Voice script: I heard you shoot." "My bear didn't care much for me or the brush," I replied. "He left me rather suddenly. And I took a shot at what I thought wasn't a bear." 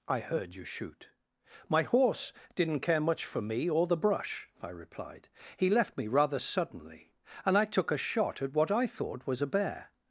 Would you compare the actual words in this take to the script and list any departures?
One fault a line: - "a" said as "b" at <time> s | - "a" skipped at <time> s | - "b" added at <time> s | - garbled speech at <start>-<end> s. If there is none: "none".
- "bear" said as "horse" at 1.8 s
- "wasn't" said as "was" at 9.3 s